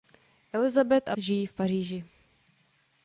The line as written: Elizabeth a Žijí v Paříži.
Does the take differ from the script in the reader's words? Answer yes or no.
no